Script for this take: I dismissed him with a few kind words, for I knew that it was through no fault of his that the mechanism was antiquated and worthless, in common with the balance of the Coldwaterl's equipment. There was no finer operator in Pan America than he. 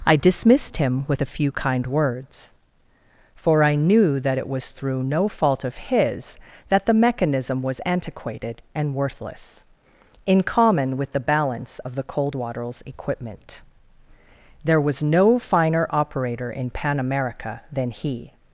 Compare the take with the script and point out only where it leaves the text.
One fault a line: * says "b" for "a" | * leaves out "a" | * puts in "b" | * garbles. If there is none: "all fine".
all fine